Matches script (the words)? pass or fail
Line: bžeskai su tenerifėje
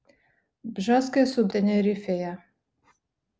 pass